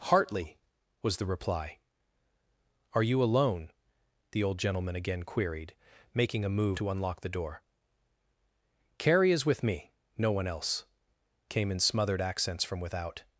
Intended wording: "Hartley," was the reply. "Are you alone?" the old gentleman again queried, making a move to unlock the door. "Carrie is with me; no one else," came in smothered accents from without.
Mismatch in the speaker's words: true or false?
false